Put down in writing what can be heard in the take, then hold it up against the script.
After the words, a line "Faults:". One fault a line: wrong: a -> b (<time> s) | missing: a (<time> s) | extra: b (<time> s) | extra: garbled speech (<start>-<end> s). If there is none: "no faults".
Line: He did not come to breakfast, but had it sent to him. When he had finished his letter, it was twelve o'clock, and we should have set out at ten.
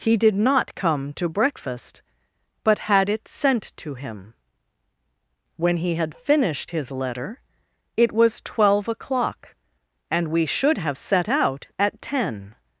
He did not come to breakfast, but had it sent to him. When he had finished his letter, it was twelve o'clock, and we should have set out at ten.
Faults:
no faults